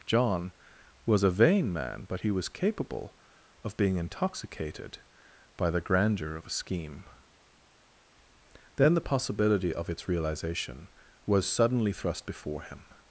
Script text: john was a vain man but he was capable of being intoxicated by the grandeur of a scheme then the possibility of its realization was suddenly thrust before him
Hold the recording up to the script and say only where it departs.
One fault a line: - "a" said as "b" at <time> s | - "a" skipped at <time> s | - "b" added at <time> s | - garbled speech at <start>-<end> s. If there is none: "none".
none